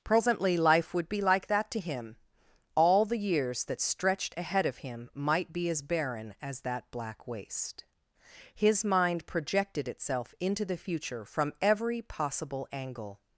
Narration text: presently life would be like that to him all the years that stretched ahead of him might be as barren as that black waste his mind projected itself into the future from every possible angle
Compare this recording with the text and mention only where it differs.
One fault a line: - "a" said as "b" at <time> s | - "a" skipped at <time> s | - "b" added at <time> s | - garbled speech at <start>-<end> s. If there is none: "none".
none